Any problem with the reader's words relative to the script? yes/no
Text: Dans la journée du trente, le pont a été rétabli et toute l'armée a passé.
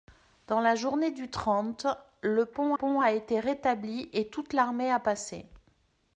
yes